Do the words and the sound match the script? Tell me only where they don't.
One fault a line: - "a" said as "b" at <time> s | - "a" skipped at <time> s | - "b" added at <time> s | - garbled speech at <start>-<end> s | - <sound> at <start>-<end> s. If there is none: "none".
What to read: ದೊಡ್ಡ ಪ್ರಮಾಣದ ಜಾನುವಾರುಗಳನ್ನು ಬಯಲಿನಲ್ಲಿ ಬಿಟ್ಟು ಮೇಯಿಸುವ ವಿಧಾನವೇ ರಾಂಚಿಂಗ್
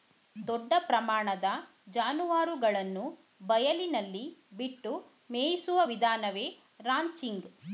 none